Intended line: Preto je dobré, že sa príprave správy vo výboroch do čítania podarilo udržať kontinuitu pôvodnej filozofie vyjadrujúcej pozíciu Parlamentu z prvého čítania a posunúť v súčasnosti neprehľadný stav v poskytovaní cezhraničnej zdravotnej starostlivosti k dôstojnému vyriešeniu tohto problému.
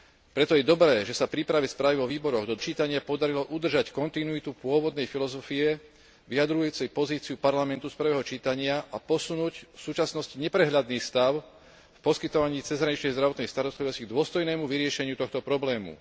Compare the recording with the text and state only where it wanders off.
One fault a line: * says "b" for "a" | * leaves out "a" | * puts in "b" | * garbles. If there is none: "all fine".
all fine